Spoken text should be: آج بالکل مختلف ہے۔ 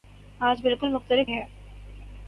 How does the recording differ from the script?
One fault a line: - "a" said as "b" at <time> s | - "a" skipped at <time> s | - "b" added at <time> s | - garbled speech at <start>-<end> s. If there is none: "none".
none